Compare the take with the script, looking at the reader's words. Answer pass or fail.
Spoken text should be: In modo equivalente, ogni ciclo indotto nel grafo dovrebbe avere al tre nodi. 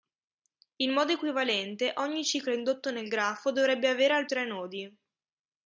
pass